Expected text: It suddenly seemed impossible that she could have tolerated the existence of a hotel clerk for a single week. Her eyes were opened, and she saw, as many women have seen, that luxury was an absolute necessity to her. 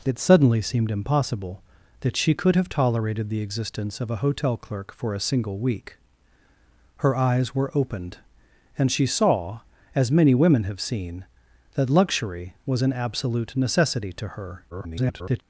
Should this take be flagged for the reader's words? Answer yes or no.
yes